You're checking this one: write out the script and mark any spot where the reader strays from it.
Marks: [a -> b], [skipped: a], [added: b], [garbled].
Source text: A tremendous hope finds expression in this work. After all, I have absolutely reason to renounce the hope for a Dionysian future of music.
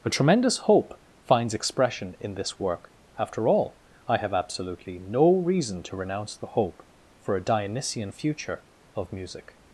A tremendous hope finds expression in this work. After all, I have absolutely [added: no] reason to renounce the hope for a Dionysian future of music.